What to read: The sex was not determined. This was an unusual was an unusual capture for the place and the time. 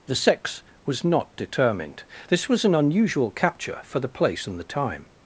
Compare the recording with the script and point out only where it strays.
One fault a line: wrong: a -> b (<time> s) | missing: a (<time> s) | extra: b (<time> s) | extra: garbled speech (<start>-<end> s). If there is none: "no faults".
missing: was an unusual (3.3 s)